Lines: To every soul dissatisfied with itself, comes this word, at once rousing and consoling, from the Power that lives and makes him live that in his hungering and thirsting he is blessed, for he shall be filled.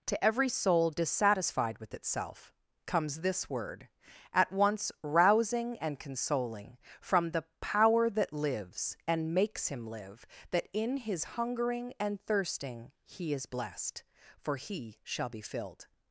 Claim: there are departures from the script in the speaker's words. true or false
false